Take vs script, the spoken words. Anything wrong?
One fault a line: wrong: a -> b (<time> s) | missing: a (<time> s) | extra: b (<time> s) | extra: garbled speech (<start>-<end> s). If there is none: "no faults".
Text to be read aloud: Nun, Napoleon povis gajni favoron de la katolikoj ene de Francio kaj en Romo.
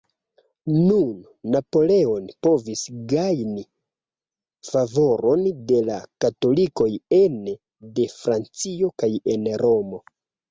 no faults